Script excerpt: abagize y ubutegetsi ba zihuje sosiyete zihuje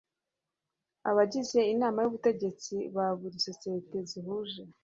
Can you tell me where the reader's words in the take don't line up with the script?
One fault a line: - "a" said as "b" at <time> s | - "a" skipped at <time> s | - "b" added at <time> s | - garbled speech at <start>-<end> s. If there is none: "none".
- "inama" added at 1.7 s
- "zihuje" said as "buri" at 3.2 s